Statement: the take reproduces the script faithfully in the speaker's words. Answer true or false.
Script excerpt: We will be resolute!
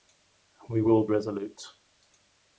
false